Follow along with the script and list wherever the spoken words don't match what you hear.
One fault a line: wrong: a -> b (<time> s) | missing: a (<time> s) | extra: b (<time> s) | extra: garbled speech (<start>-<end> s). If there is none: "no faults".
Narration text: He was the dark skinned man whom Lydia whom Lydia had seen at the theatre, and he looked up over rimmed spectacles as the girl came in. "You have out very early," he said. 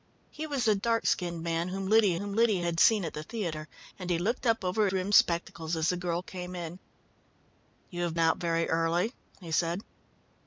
no faults